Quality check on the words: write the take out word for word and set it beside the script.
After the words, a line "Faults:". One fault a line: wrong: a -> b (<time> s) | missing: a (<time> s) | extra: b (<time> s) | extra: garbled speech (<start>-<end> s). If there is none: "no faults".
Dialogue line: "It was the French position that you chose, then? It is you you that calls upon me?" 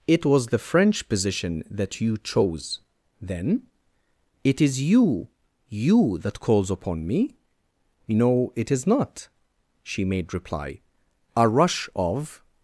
"It was the French position that you chose, then? It is you you that calls upon me?" "No, it is not," she made reply, a rush of
Faults:
extra: No it is not she made reply a rush of (8.1 s)